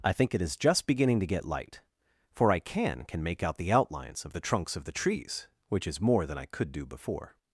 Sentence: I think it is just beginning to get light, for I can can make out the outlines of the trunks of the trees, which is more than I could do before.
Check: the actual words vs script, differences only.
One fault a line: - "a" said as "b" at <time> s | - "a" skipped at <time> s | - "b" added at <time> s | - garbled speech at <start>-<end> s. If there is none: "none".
none